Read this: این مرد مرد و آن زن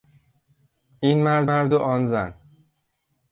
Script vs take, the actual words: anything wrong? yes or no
no